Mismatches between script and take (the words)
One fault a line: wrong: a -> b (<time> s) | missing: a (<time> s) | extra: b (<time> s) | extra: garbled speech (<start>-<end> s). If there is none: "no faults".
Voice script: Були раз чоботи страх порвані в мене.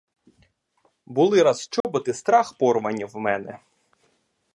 no faults